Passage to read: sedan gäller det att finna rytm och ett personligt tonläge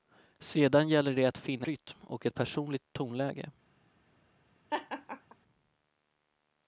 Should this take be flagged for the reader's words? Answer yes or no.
no